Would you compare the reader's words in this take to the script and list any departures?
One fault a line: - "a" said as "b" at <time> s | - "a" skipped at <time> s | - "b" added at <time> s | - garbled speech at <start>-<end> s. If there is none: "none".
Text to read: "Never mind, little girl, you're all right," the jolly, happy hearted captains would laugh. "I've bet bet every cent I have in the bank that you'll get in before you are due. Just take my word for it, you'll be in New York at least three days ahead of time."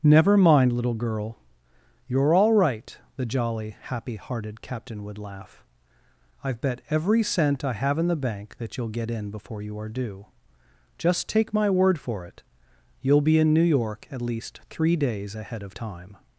- "captains" said as "captain" at 4.6 s
- "bet" skipped at 6.8 s